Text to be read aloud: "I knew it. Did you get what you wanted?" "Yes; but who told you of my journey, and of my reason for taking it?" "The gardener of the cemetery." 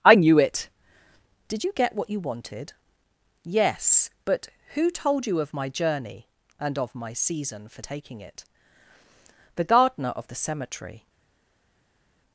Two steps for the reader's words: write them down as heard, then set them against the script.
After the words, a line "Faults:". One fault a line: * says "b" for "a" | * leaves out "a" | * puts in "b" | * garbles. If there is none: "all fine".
"I knew it. Did you get what you wanted?" "Yes; but who told you of my journey, and of my season for taking it?" "The gardener of the cemetery."
Faults:
* says "season" for "reason"